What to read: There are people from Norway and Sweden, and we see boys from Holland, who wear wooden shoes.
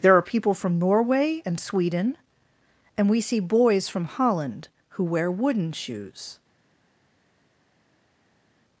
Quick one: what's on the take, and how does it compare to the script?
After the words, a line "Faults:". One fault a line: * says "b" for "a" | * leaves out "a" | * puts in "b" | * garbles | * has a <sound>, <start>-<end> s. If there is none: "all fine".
There are people from Norway and Sweden, and we see boys from Holland, who wear wooden shoes.
Faults:
all fine